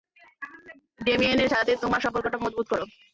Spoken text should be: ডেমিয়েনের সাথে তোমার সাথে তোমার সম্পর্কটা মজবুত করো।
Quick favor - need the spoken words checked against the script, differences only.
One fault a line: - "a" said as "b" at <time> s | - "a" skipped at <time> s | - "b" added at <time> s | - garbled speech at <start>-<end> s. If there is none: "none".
- "সাথে তোমার" skipped at 2.0 s